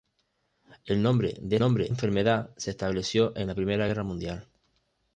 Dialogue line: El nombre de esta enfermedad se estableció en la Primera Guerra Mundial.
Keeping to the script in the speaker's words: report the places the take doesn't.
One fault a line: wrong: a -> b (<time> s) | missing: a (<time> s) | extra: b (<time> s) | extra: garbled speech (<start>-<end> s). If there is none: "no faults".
wrong: esta -> nombre (1.6 s)